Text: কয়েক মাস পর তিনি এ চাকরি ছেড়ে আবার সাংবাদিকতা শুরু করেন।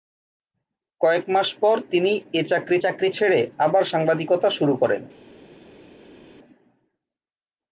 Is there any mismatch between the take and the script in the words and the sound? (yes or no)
yes